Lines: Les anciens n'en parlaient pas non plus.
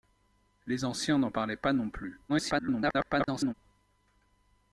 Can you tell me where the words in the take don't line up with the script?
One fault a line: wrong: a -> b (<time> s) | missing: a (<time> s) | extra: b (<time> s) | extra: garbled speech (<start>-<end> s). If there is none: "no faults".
extra: garbled speech (2.3-3.5 s)